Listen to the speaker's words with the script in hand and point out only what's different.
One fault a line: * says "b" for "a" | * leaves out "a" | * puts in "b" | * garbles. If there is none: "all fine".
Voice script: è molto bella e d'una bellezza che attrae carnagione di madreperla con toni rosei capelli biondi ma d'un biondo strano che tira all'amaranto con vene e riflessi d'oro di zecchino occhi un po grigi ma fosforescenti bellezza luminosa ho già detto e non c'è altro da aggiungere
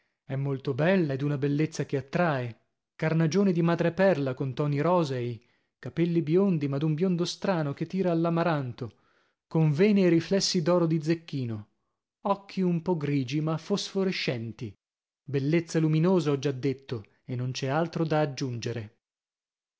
all fine